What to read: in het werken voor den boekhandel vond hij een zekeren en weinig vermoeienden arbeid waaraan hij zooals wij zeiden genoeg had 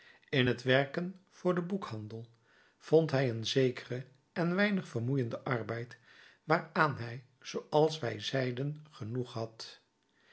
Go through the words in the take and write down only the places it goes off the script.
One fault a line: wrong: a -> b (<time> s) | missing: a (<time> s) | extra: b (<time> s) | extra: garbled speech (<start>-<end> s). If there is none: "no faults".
no faults